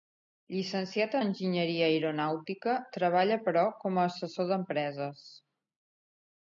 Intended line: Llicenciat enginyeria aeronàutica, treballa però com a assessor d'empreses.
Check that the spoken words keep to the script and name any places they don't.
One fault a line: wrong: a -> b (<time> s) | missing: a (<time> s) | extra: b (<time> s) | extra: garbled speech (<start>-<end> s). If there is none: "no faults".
no faults